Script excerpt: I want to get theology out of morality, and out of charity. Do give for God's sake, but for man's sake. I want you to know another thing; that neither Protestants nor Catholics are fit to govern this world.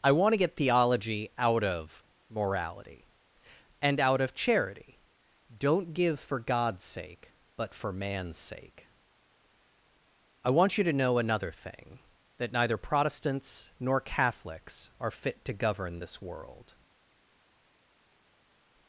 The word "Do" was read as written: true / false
false